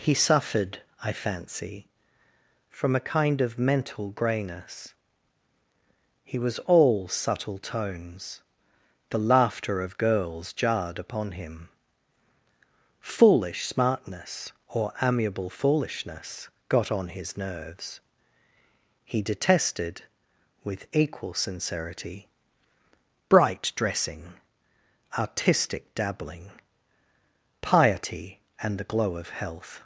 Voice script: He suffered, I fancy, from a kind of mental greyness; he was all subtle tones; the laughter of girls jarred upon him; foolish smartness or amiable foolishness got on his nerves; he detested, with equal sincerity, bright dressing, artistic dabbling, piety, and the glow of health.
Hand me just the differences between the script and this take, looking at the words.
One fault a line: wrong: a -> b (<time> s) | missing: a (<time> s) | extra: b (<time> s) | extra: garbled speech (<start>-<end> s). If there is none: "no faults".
no faults